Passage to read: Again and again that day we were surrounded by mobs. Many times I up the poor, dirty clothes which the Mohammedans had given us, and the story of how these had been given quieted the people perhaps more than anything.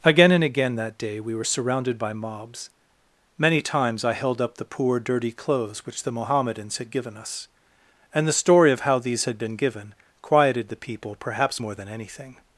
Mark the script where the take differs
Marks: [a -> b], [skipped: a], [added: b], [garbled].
Again and again that day we were surrounded by mobs. Many times I [added: held] up the poor, dirty clothes which the Mohammedans had given us, and the story of how these had been given quieted the people perhaps more than anything.